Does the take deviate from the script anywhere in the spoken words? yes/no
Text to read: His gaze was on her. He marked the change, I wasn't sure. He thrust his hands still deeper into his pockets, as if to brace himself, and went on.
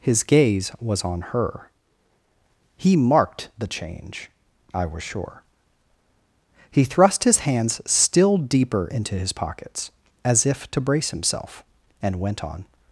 yes